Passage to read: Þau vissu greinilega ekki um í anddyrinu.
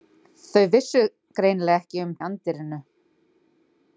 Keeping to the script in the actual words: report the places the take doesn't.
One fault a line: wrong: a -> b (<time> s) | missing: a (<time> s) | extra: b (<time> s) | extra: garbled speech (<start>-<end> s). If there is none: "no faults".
no faults